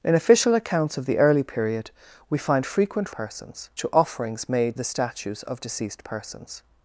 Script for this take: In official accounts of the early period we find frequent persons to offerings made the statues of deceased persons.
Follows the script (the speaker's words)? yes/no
yes